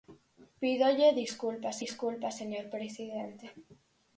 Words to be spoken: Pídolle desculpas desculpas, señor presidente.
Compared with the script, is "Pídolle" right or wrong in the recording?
right